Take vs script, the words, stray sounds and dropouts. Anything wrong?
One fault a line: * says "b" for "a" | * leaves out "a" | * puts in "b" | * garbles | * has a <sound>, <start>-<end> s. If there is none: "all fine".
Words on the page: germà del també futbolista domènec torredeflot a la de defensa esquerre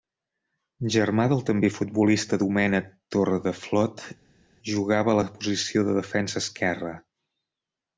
* puts in "jugava"
* puts in "posició"